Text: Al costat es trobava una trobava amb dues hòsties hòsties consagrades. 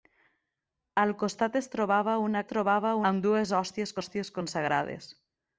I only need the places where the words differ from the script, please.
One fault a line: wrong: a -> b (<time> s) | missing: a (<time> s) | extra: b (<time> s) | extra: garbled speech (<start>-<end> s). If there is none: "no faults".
no faults